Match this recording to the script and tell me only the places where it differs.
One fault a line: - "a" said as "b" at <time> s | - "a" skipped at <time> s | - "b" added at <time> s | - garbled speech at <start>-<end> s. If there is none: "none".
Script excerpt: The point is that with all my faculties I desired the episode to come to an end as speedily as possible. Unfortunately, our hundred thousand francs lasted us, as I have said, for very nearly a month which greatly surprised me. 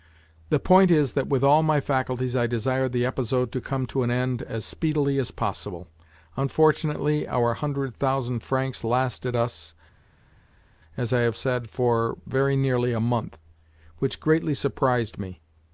none